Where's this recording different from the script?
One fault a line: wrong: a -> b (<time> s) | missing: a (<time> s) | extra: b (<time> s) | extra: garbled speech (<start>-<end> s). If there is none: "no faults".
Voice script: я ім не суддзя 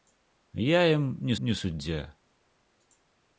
extra: не (1.4 s)